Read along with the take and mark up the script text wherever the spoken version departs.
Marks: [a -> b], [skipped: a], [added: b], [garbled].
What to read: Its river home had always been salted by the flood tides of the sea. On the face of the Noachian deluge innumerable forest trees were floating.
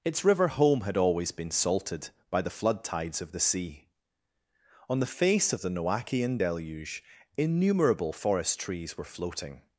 Its river home had always been salted by the flood tides of the sea. On the face of the Noachian deluge innumerable forest trees were floating.